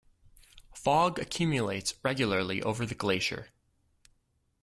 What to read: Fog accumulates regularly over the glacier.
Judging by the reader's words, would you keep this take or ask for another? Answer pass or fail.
pass